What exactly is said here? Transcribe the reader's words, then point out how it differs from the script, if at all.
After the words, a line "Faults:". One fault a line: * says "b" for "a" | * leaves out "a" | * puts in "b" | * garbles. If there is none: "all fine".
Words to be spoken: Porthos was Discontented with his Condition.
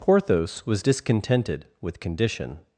Porthos was Discontented with Condition.
Faults:
* leaves out "his"